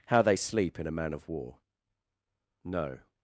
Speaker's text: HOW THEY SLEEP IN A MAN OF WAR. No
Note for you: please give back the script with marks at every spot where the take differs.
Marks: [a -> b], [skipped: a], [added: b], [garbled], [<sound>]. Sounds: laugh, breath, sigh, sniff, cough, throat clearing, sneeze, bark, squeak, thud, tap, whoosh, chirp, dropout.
HOW THEY SLEEP IN A MAN OF WAR. No